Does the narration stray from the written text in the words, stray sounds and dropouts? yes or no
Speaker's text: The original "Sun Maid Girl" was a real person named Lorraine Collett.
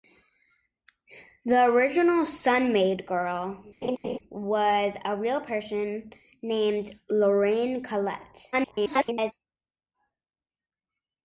yes